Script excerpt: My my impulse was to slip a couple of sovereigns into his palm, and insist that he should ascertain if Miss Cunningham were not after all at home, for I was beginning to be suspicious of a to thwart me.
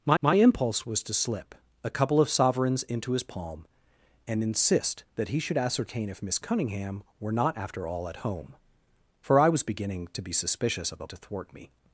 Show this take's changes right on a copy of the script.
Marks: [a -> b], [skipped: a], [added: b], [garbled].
My my impulse was to slip a couple of sovereigns into his palm, and insist that he should ascertain if Miss Cunningham were not after all at home, for I was beginning to be suspicious of a to thwart me.